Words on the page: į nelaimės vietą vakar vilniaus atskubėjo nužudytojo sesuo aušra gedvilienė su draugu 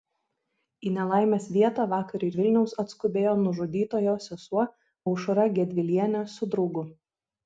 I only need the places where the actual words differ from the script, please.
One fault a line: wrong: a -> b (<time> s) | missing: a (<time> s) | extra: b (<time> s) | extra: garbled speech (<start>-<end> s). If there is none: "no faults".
no faults